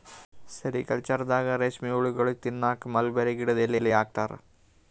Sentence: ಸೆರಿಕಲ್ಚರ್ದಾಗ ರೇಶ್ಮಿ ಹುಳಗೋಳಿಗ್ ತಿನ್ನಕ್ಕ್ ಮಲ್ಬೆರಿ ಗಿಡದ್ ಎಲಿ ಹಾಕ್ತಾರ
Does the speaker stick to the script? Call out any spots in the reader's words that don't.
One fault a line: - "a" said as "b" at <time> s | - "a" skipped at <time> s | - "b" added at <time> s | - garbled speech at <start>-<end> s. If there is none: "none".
- "ಎಲಿ" added at 3.7 s